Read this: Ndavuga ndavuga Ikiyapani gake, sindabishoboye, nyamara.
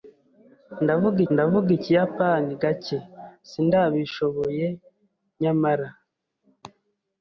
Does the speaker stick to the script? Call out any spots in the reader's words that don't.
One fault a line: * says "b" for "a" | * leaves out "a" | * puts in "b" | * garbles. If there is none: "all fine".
all fine